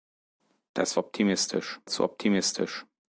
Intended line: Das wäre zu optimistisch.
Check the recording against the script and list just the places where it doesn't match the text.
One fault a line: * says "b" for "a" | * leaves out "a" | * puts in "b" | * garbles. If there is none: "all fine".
* says "optimistisch" for "wäre"